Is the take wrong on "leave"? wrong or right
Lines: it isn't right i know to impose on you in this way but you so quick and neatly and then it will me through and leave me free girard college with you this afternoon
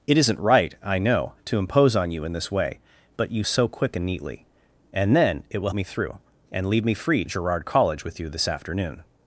right